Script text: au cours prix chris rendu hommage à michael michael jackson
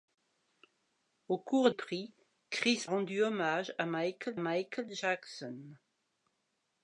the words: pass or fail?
pass